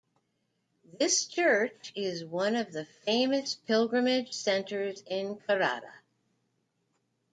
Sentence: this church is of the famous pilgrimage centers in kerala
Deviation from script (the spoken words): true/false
true